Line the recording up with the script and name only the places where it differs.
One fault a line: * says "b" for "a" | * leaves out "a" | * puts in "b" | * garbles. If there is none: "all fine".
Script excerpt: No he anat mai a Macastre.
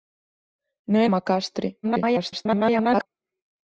* leaves out "anat mai"
* garbles